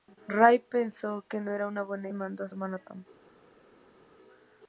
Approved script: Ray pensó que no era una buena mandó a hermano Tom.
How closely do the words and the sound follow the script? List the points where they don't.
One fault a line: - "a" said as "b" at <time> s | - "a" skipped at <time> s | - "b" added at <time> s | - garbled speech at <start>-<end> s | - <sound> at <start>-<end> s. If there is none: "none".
none